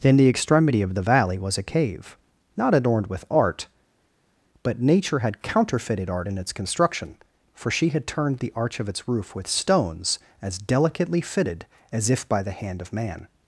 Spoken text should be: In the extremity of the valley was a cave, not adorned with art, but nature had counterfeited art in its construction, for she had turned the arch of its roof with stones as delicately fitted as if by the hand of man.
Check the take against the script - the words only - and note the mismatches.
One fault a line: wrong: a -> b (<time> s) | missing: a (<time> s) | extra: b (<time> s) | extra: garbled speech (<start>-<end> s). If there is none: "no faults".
no faults